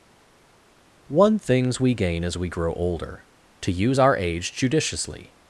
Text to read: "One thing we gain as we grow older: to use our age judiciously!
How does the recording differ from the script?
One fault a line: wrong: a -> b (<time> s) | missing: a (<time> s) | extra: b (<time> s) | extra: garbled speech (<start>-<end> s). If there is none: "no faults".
wrong: thing -> things (1.4 s)